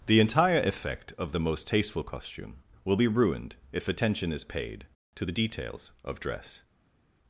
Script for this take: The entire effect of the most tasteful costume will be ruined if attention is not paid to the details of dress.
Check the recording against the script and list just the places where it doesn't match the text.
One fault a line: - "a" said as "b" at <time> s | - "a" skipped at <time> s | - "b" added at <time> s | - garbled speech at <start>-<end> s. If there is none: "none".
- "not" skipped at 4.4 s